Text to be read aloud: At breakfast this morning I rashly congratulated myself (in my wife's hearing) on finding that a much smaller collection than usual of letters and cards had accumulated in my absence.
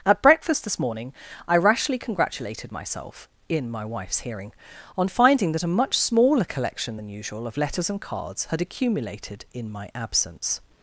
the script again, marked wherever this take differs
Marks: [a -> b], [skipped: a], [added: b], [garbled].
At breakfast this morning I rashly congratulated myself (in my wife's hearing) on finding that a much smaller collection than usual of letters and cards had accumulated in my absence.